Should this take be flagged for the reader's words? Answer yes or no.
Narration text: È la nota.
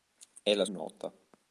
no